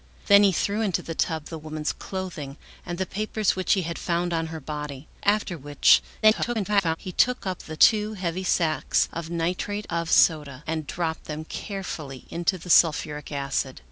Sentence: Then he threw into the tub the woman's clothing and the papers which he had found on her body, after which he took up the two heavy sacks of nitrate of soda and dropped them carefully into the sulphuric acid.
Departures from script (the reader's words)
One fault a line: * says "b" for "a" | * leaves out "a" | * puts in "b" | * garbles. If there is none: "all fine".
* garbles